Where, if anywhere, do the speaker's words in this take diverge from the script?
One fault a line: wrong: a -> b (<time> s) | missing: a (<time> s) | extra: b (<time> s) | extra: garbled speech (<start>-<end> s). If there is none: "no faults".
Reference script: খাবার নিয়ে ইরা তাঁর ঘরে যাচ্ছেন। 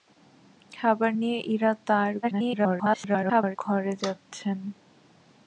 extra: garbled speech (2.2-3.6 s)